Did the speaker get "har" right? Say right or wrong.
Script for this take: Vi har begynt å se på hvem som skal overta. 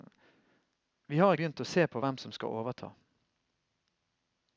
right